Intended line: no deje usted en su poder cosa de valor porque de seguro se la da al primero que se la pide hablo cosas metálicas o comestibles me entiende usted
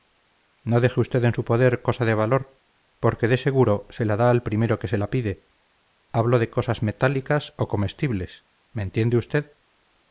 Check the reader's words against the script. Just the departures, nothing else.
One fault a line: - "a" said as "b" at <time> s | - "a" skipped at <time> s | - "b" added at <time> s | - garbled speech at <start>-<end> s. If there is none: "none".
- "de" added at 6.4 s